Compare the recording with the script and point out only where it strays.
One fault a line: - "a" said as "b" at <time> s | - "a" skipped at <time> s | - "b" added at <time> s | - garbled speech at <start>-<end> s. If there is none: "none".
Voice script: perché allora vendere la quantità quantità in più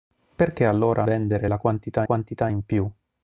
none